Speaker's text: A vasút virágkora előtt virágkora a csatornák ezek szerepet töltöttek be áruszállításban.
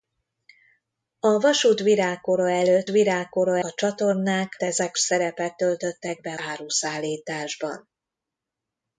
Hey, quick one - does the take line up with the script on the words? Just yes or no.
yes